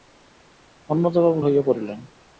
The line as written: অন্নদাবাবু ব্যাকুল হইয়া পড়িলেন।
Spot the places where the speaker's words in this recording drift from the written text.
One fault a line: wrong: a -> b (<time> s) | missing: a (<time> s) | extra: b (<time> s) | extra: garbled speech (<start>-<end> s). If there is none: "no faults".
missing: ব্যাকুল (1.4 s)